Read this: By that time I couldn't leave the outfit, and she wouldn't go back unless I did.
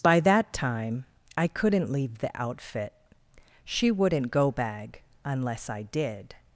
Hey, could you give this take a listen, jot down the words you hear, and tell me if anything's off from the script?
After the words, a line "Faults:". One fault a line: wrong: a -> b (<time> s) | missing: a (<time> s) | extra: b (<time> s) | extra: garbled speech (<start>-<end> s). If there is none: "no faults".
By that time I couldn't leave the outfit, she wouldn't go bag unless I did.
Faults:
missing: and (2.9 s)
wrong: back -> bag (4.5 s)